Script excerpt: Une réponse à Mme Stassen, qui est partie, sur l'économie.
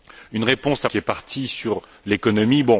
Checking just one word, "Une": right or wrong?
right